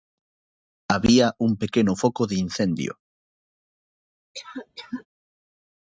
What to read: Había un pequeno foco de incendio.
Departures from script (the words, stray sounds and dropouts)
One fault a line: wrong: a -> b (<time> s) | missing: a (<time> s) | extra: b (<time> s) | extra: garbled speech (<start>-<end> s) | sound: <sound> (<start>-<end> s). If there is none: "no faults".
sound: cough (4.3-5.1 s)